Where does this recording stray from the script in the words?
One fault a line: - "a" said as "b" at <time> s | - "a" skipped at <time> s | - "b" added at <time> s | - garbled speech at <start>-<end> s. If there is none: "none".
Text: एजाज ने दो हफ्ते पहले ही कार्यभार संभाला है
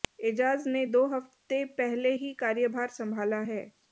none